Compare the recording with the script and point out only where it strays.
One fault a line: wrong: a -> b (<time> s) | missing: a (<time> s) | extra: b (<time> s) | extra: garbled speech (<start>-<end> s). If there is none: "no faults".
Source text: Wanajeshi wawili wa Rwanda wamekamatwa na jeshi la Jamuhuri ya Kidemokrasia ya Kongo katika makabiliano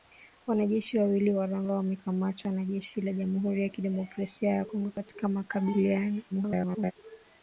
extra: garbled speech (6.3-6.9 s)